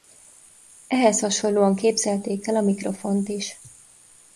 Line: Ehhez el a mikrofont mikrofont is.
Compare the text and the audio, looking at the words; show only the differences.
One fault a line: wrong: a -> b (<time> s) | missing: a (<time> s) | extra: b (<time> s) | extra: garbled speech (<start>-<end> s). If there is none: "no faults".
extra: hasonlóan képzelték (1.2 s)
missing: mikrofont (3.3 s)